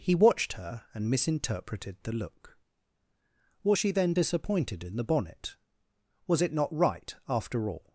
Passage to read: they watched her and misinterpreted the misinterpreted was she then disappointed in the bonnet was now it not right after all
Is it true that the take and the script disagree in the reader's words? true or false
true